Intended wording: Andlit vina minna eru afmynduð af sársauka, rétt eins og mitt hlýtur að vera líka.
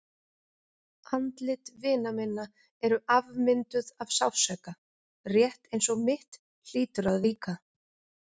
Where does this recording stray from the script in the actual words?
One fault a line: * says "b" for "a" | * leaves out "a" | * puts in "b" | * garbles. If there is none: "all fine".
* leaves out "vera"